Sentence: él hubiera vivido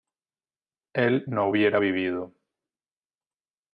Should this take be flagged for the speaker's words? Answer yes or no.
yes